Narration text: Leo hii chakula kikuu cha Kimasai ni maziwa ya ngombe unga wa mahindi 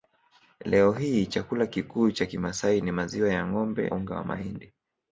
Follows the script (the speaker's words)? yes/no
yes